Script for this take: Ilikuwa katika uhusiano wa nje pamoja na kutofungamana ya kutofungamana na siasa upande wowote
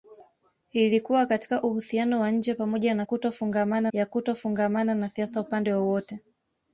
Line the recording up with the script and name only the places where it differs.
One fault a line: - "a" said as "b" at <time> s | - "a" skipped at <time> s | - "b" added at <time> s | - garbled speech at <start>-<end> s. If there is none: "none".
none